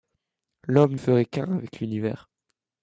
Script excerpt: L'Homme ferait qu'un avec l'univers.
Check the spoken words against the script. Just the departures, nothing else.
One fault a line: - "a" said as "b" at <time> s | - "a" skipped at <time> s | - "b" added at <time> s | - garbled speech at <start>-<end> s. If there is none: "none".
none